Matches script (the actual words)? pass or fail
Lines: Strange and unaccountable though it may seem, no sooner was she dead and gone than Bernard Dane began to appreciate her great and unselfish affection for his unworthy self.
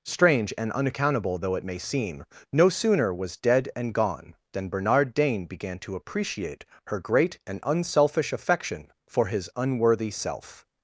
fail